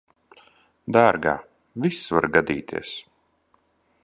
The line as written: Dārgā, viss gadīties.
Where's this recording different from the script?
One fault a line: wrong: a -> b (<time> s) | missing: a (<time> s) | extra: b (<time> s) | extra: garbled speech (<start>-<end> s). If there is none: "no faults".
extra: var (2.2 s)